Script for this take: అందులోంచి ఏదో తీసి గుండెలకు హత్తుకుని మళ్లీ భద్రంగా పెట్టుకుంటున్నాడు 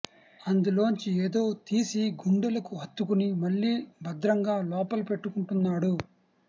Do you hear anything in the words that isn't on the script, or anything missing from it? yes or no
yes